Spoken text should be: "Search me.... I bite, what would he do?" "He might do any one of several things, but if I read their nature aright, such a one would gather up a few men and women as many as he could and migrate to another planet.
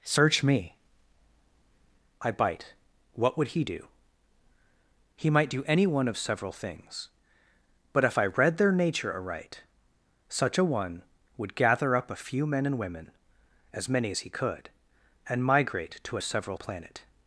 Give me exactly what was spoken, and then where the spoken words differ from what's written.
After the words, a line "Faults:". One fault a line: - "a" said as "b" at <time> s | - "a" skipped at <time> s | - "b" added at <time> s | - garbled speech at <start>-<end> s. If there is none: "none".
"Search me.... I bite, what would he do?" "He might do any one of several things, but if I read their nature aright, such a one would gather up a few men and women as many as he could and migrate to several planet.
Faults:
- "another" said as "several" at 16.2 s